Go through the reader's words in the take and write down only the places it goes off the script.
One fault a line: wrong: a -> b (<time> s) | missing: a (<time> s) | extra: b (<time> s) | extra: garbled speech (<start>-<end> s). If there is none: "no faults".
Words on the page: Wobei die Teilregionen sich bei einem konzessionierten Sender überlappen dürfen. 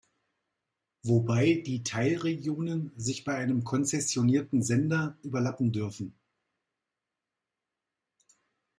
no faults